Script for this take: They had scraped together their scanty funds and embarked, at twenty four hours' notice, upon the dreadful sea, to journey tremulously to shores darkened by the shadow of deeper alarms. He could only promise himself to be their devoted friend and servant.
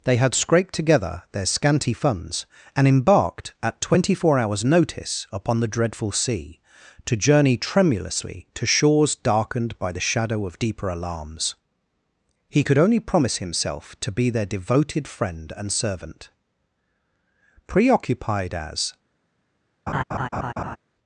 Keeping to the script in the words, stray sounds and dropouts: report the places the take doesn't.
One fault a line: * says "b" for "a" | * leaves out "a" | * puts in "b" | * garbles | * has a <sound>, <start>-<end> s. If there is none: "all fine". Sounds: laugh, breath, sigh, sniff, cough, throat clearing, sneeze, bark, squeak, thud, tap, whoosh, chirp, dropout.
* puts in "Preoccupied as"
* has a laugh, 19.9-20.8 s